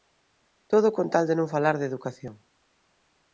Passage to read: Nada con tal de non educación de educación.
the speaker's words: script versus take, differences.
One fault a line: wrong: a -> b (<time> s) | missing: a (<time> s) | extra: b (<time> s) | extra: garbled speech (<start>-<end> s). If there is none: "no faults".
wrong: Nada -> Todo (0.7 s)
wrong: educación -> falar (1.5 s)